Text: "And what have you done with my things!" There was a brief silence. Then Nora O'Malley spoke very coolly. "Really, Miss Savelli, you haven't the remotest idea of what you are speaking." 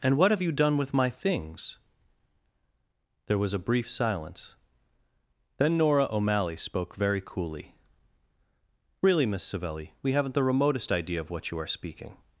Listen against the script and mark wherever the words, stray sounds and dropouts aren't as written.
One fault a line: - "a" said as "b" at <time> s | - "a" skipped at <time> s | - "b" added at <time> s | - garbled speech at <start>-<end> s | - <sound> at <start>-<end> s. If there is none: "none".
- "you" said as "we" at 10.0 s